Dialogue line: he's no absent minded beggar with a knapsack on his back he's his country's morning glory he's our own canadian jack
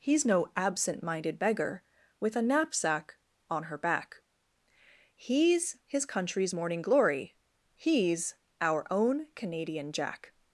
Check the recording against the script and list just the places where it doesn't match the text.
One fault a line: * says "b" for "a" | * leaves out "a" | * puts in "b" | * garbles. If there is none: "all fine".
* says "her" for "his"